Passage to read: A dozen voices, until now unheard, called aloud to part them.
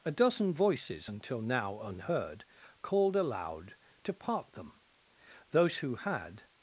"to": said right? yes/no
yes